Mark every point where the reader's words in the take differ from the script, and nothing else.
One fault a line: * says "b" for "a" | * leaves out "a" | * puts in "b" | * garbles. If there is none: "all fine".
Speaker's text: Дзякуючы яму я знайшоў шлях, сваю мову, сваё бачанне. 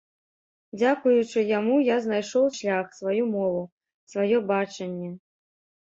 all fine